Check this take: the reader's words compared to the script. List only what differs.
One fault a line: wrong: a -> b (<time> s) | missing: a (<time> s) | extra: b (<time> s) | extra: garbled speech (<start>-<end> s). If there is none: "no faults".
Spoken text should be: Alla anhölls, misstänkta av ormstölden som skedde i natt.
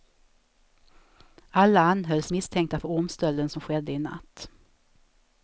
wrong: av -> för (2.8 s)